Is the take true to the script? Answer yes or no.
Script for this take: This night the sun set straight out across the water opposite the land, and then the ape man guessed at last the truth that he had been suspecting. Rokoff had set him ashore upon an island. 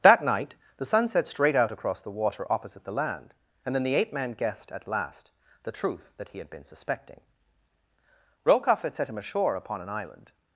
no